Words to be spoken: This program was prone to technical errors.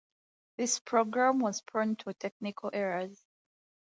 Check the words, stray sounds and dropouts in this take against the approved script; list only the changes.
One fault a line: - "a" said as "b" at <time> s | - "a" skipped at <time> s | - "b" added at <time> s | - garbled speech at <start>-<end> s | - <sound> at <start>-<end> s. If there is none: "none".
none